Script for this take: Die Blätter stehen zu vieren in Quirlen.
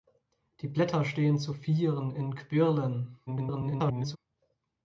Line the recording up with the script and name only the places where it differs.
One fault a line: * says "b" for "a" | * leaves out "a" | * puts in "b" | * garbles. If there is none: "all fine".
* garbles